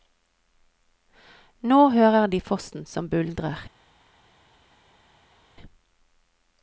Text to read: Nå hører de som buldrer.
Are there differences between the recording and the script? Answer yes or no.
yes